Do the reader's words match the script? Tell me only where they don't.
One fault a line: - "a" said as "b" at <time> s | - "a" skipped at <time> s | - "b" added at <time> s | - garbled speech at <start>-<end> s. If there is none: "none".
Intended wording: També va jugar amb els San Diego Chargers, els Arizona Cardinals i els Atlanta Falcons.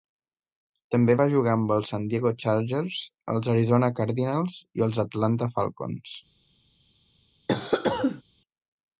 none